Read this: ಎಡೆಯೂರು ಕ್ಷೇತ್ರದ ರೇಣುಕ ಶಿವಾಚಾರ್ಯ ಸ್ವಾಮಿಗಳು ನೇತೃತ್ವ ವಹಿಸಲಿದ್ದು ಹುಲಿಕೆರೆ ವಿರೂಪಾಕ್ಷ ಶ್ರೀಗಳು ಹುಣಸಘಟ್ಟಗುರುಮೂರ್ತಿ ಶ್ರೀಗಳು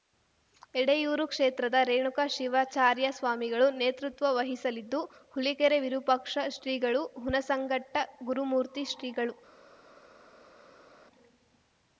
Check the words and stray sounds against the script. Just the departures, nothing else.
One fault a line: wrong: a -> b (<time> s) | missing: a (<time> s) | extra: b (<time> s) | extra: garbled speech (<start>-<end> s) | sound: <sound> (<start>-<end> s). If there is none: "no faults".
no faults